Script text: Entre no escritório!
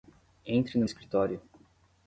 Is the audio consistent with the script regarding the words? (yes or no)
yes